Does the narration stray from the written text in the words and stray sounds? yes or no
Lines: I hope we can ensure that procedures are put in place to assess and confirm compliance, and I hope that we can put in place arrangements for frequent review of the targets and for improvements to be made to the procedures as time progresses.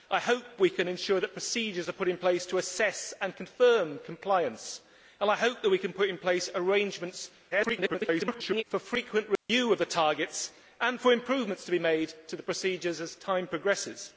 yes